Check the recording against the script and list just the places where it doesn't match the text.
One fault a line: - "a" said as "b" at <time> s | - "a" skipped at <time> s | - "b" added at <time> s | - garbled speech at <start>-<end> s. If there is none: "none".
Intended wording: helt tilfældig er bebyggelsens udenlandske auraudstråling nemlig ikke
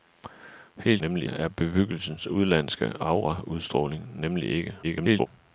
- "tilfældig" said as "nemlig" at 1.0 s
- garbled speech at 4.8-5.3 s